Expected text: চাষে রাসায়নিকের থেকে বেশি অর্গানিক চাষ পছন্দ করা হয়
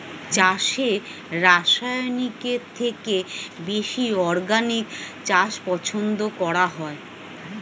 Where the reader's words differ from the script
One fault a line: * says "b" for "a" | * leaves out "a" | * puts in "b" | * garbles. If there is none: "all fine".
all fine